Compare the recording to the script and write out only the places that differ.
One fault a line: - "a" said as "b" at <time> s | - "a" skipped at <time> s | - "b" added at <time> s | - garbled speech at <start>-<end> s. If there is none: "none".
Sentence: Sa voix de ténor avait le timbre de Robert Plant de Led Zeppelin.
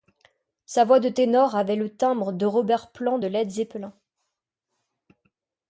none